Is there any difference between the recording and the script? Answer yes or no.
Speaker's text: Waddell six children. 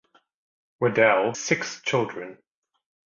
no